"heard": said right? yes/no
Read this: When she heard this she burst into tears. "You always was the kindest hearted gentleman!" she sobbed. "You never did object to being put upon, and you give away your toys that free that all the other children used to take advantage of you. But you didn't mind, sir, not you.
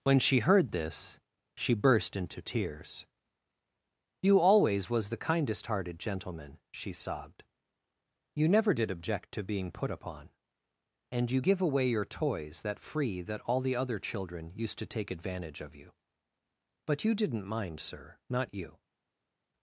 yes